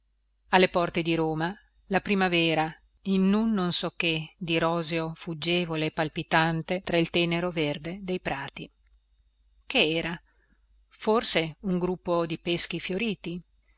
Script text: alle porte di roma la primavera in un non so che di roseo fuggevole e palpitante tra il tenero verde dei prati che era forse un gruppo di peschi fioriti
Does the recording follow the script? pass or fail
pass